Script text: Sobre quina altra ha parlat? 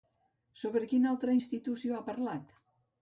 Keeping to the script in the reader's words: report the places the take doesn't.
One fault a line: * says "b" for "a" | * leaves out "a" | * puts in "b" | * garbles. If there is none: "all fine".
* puts in "institució"